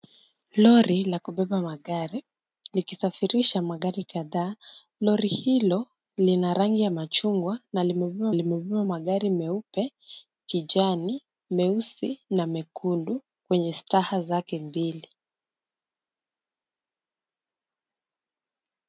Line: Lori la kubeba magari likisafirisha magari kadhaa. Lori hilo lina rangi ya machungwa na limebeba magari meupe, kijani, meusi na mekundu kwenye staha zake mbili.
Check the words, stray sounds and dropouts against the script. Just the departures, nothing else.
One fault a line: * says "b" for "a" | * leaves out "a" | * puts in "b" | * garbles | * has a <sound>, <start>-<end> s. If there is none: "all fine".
* puts in "limebeba"